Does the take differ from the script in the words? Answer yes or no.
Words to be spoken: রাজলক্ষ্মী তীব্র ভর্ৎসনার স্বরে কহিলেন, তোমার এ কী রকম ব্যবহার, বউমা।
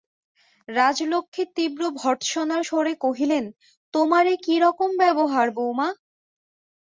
no